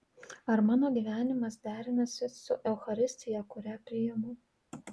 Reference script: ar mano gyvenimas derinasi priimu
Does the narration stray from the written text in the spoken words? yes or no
yes